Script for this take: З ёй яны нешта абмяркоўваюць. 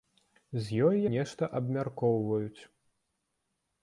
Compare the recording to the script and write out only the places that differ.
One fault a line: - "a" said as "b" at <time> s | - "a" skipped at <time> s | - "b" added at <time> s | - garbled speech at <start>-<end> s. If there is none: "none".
- "яны" skipped at 1.0 s